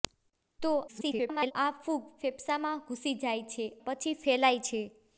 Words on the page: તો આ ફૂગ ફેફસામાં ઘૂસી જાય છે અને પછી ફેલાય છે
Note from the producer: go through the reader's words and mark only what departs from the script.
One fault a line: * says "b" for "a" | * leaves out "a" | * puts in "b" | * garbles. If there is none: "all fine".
* garbles
* leaves out "અને"